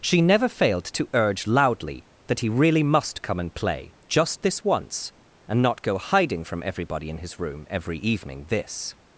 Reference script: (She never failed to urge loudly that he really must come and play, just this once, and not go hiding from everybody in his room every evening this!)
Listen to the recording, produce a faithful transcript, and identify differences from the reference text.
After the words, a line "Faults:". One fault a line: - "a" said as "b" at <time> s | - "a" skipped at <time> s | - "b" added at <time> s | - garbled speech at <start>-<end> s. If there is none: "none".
(She never failed to urge loudly that he really must come and play, just this once, and not go hiding from everybody in his room every evening this!)
Faults:
none